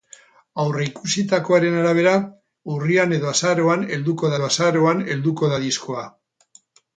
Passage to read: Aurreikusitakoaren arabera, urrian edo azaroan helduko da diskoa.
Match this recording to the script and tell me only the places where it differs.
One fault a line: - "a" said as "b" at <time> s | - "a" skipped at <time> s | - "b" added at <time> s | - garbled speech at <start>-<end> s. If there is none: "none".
- "edo azaroan helduko" added at 4.3 s